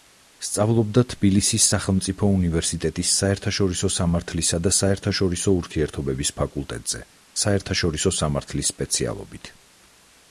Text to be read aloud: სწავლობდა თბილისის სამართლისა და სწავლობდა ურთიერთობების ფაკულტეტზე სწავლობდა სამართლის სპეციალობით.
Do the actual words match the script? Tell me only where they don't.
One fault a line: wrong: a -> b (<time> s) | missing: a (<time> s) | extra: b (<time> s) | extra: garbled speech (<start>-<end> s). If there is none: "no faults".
extra: სახელმწიფო უნივერსიტეტის საერთაშორისო (1.7 s)
wrong: სწავლობდა -> საერთაშორისო (4.8 s)
wrong: სწავლობდა -> საერთაშორისო (7.4 s)